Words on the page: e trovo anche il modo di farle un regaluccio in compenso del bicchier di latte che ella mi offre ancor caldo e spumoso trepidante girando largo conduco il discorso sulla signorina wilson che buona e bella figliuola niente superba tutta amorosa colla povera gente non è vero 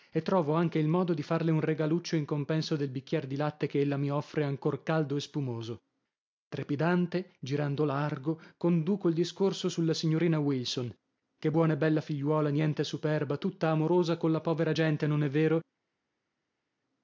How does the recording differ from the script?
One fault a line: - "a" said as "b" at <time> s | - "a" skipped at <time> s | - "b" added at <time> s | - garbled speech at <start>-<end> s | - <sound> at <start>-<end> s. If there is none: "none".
none